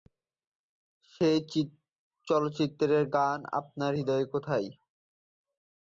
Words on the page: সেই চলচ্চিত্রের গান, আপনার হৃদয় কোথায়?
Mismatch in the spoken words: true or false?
false